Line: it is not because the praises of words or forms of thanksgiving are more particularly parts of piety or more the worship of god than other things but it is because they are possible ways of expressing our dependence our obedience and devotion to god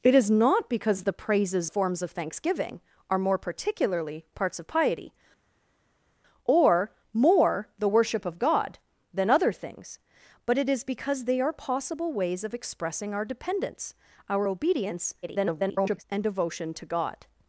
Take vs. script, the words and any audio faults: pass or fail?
fail